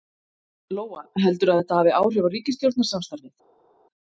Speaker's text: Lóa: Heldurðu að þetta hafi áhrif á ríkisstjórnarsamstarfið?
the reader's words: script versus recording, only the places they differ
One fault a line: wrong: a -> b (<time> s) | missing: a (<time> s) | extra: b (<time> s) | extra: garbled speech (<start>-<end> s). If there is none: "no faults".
no faults